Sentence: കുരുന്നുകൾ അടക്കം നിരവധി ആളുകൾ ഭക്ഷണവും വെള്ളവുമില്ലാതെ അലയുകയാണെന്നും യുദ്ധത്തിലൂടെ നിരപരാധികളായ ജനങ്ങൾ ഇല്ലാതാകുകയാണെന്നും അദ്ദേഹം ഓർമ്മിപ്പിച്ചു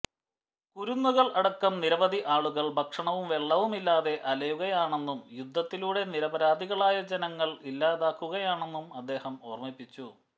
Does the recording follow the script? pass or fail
pass